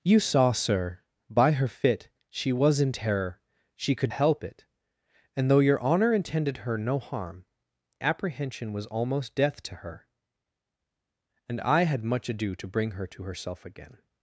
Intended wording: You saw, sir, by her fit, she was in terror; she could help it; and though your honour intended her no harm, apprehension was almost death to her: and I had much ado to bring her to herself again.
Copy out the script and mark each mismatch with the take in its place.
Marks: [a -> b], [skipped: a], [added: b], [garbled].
You saw, sir, by her fit, she was in terror; she could help it; and though your honour intended her no harm, apprehension was almost death to her: and I had much ado to bring her to herself again.